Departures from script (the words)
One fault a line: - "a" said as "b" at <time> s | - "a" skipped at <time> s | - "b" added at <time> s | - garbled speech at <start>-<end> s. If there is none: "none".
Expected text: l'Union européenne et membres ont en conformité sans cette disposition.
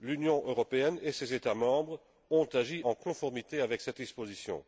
- "ses États" added at 1.1 s
- "agi" added at 2.5 s
- "sans" said as "avec" at 3.6 s